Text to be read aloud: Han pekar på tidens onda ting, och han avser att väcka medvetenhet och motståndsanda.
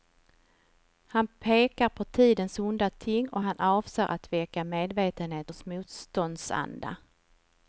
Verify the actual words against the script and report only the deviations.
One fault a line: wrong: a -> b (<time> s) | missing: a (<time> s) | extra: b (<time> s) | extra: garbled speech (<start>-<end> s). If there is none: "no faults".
no faults